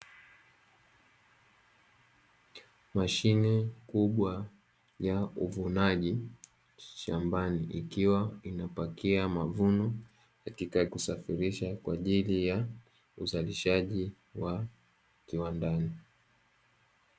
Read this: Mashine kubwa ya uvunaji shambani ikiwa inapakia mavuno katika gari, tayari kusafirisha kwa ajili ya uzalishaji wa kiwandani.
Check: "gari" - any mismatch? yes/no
yes